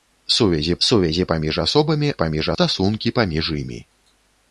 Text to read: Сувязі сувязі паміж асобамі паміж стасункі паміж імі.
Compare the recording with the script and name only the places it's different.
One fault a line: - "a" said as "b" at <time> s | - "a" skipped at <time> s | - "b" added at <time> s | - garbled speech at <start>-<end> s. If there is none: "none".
none